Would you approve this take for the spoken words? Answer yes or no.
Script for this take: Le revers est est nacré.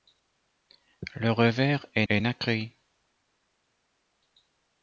yes